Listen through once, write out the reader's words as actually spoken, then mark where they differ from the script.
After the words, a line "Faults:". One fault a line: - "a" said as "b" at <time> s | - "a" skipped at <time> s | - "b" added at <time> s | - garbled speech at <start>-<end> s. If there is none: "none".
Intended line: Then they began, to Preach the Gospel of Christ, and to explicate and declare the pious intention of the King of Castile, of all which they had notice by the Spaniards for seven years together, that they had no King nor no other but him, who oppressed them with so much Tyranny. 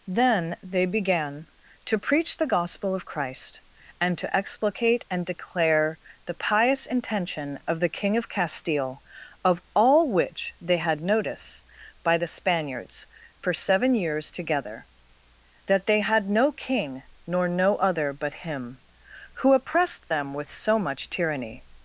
Then they began, to Preach the Gospel of Christ, and to explicate and declare the pious intention of the King of Castile, of all which they had notice by the Spaniards for seven years together, that they had no King nor no other but him, who oppressed them with so much Tyranny.
Faults:
none